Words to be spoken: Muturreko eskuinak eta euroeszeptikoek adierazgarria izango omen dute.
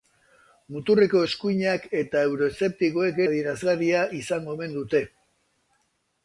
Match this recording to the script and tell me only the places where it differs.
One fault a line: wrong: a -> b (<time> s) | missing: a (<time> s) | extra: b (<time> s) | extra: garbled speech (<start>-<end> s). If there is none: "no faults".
no faults